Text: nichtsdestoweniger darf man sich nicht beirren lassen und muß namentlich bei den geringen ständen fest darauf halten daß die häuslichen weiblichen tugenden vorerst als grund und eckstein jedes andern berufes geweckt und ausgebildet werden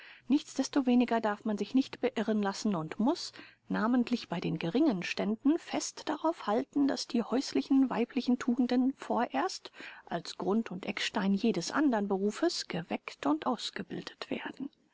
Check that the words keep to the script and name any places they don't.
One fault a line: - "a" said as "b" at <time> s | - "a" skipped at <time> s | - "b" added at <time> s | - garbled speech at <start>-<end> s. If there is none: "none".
none